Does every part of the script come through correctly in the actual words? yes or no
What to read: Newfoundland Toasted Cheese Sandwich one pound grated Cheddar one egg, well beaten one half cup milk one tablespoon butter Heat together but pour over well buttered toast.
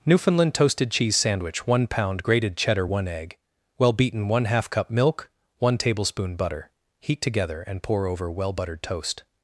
no